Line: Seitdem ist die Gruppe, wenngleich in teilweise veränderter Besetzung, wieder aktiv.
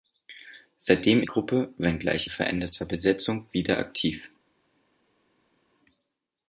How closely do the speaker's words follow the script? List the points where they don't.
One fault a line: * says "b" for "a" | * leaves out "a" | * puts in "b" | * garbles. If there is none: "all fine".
* leaves out "ist"
* leaves out "in teilweise"